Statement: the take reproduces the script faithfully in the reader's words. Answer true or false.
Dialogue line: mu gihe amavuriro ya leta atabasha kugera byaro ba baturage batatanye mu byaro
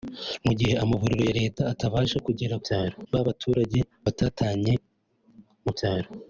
true